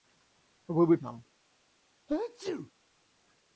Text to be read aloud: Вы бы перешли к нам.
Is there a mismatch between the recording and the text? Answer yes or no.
yes